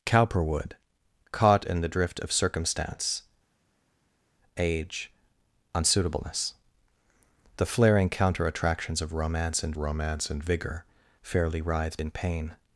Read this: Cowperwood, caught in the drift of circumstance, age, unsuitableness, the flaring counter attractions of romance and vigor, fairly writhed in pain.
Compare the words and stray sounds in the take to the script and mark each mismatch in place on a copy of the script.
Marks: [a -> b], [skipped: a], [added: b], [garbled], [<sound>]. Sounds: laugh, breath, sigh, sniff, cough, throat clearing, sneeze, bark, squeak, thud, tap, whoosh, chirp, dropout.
Cowperwood, caught in the drift of circumstance, age, unsuitableness, the flaring counter attractions of romance and [added: romance and] vigor, fairly writhed in pain.